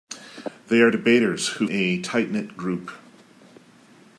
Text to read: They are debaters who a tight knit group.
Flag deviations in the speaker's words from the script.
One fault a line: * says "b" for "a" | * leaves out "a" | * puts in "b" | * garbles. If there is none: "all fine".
all fine